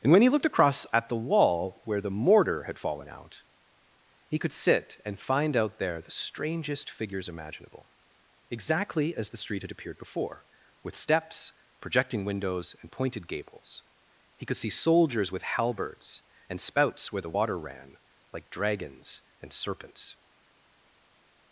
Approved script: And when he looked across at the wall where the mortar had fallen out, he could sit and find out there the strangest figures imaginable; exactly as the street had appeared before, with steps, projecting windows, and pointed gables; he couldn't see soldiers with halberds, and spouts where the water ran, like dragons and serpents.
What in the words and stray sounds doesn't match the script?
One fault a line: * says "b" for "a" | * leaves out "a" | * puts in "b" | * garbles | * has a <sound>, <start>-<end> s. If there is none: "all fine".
* says "could" for "couldn't"